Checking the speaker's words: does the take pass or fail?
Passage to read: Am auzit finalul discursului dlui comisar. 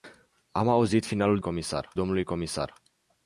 fail